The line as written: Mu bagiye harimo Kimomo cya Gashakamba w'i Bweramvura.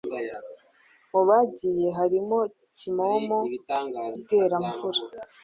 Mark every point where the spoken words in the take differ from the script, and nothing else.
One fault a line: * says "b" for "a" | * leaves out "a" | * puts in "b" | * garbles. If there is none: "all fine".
* leaves out "cya Gashakamba w'i"